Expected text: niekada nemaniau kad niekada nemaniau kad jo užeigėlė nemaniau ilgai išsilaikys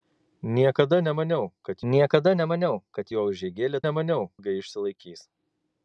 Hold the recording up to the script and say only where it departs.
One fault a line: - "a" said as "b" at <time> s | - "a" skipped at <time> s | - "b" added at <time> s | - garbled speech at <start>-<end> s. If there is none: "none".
none